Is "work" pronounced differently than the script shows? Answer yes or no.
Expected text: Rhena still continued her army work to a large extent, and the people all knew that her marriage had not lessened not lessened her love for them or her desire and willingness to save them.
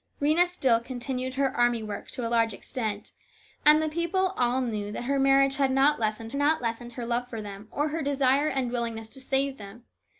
no